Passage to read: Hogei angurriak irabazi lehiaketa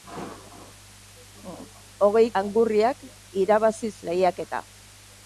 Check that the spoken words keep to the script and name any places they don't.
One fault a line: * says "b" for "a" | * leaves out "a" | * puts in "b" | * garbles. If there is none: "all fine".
all fine